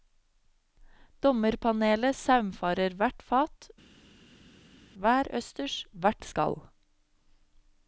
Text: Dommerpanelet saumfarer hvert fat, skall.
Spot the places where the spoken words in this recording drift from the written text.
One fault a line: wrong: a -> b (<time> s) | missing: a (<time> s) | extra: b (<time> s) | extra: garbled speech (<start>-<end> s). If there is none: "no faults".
extra: hver østers hvert (5.0 s)